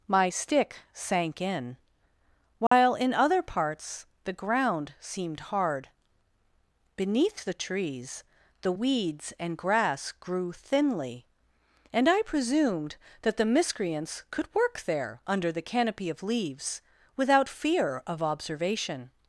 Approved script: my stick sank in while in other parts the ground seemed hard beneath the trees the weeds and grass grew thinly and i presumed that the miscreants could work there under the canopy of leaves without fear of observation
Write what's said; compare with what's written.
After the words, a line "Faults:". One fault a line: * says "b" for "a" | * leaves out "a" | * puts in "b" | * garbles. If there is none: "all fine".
my stick sank in while in other parts the ground seemed hard beneath the trees the weeds and grass grew thinly and i presumed that the miscreants could work there under the canopy of leaves without fear of observation
Faults:
all fine